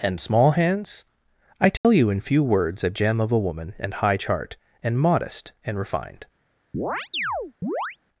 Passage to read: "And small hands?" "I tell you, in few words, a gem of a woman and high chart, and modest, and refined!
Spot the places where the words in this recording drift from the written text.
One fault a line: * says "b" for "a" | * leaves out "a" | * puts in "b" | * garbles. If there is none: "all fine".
all fine